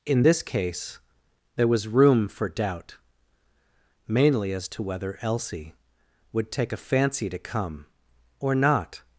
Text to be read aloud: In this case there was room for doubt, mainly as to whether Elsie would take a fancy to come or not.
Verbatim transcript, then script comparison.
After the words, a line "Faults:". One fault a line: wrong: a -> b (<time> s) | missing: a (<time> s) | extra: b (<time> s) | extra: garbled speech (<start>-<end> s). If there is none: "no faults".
In this case there was room for doubt, mainly as to whether Elsie would take a fancy to come or not.
Faults:
no faults